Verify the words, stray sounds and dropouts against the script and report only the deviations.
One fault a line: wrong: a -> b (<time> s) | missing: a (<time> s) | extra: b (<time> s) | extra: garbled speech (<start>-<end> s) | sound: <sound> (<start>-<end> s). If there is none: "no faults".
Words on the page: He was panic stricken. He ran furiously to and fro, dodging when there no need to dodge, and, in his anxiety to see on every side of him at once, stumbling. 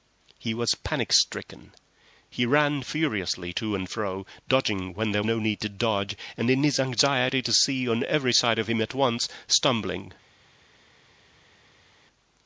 no faults